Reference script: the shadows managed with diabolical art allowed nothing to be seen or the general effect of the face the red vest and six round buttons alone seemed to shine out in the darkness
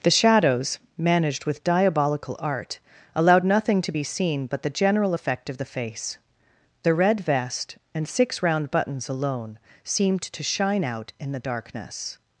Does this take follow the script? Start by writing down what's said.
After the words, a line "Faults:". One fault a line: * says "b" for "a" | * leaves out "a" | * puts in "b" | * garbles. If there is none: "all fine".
the shadows managed with diabolical art allowed nothing to be seen but the general effect of the face the red vest and six round buttons alone seemed to shine out in the darkness
Faults:
* says "but" for "or"